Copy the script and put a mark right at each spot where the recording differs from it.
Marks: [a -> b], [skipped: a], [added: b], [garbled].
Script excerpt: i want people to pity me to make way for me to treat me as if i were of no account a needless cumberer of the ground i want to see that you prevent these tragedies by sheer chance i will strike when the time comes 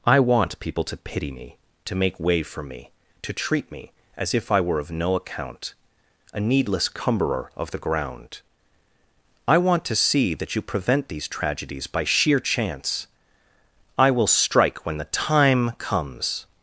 i want people to pity me to make way for me to treat me as if i were of no account a needless cumberer of the ground i want to see that you prevent these tragedies by sheer chance i will strike when the time comes